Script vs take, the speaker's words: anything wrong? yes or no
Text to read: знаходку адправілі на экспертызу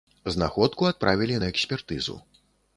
no